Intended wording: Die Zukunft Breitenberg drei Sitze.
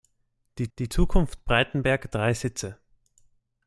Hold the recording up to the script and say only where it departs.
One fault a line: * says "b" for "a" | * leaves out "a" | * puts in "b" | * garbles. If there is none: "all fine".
* puts in "die"